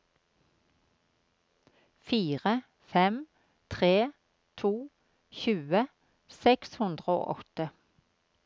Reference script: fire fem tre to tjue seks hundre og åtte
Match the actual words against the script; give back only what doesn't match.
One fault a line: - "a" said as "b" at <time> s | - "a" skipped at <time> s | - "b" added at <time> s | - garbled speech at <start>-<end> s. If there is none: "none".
none